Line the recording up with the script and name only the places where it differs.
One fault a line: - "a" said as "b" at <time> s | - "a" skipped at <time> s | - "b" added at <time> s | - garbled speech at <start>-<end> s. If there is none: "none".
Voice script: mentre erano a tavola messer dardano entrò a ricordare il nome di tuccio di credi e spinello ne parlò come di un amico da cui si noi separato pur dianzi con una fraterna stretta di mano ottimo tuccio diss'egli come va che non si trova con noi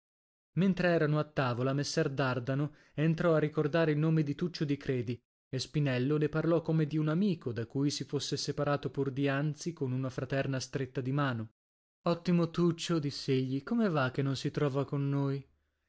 - "noi" said as "fosse" at 8.0 s